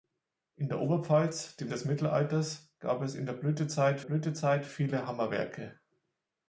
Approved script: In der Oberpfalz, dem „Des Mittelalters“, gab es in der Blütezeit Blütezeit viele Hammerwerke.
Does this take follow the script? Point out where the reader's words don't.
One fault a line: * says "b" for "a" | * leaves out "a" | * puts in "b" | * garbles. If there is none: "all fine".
all fine